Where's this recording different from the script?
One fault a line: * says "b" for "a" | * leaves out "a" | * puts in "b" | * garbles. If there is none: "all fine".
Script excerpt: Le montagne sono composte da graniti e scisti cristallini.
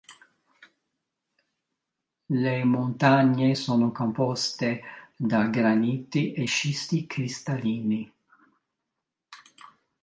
all fine